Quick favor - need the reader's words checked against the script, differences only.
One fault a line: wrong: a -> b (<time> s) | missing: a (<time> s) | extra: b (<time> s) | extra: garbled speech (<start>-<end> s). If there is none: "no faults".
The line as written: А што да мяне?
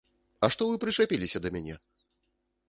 extra: вы прычапіліся (0.7 s)